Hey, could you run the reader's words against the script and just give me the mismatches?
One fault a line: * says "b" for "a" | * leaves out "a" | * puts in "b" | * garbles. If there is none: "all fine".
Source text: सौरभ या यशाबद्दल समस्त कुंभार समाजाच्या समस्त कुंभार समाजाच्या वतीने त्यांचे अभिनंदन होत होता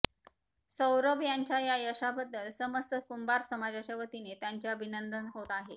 * puts in "यांच्या"
* leaves out "समस्त कुंभार समाजाच्या"
* says "आहे" for "होता"